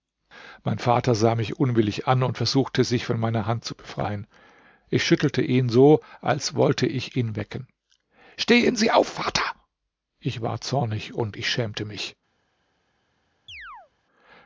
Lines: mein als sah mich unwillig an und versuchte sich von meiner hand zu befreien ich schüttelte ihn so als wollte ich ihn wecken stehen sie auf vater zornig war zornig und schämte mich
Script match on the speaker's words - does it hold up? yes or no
no